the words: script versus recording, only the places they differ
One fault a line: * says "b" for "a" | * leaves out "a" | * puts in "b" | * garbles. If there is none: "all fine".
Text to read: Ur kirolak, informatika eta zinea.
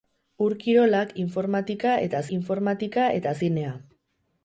* puts in "informatika eta"